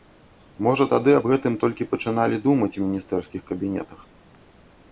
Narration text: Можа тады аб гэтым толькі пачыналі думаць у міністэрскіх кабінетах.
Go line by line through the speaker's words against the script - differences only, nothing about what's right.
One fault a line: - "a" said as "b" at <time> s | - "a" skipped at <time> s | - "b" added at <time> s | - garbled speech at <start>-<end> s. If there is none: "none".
none